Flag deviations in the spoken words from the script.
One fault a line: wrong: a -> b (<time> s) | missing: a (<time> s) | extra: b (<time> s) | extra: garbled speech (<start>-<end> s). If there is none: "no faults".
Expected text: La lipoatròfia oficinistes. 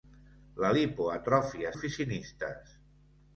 no faults